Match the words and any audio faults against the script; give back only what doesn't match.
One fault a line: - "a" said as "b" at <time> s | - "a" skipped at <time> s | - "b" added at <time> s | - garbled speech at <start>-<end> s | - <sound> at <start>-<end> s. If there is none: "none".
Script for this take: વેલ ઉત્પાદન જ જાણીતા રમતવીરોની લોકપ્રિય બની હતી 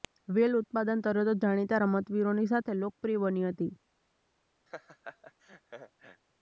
- "તરત" added at 1.0 s
- "સાથે" added at 2.5 s
- laugh at 4.7-6.2 s